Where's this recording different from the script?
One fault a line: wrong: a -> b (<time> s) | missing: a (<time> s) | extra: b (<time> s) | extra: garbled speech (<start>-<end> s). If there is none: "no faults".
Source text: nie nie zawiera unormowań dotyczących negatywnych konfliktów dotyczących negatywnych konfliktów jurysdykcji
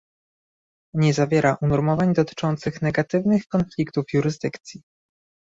missing: nie (1.1 s)
missing: dotyczących negatywnych konfliktów (4.0 s)